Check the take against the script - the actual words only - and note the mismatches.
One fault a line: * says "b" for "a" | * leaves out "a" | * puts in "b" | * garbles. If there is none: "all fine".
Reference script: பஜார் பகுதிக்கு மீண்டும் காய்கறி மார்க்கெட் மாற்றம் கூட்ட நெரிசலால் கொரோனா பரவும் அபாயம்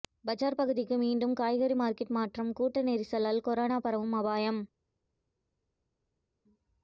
all fine